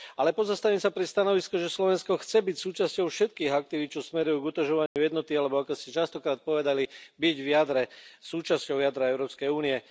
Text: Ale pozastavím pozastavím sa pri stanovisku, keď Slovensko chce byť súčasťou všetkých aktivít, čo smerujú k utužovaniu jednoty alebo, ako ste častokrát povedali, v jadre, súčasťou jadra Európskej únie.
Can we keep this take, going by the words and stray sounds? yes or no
no